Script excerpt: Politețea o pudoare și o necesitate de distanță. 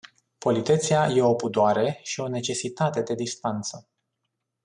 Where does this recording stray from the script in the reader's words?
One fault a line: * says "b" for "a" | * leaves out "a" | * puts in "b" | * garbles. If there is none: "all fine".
* puts in "e"